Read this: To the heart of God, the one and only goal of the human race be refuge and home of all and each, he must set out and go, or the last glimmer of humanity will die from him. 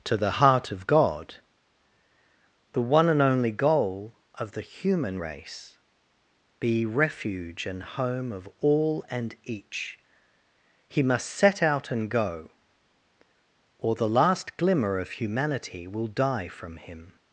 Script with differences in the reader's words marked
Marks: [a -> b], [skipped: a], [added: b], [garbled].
To the heart of God, the one and only goal of the human race be refuge and home of all and each, he must set out and go, or the last glimmer of humanity will die from him.